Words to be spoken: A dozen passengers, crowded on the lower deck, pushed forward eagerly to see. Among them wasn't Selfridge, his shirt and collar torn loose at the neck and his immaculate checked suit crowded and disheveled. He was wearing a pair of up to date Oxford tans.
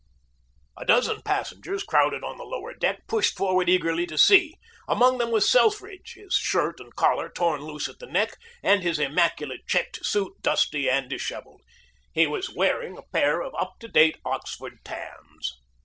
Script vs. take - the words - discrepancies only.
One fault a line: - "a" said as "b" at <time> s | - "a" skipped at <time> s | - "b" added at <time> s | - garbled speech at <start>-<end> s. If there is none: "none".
- "wasn't" said as "was" at 5.3 s
- "crowded" said as "dusty" at 10.4 s